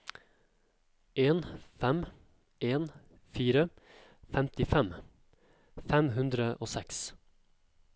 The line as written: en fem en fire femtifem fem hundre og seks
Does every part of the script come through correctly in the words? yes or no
yes